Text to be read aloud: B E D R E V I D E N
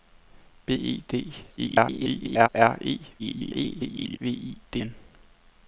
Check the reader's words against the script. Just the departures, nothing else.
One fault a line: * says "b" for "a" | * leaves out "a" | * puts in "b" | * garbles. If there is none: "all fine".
* garbles
* garbles
* leaves out "E"